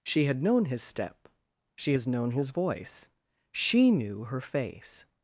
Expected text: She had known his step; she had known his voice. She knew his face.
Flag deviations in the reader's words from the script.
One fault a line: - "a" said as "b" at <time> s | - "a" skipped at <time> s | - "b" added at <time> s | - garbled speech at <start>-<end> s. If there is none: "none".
- "had" said as "has" at 1.9 s
- "his" said as "her" at 4.2 s